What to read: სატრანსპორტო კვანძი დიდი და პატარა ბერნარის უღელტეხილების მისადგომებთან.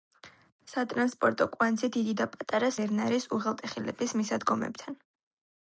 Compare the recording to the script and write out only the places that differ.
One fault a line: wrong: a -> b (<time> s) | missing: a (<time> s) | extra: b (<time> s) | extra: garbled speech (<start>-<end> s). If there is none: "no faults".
no faults